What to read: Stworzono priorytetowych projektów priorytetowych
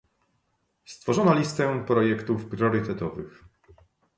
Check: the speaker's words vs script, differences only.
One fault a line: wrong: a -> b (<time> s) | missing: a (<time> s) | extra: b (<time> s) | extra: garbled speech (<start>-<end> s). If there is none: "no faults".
wrong: priorytetowych -> listę (1.3 s)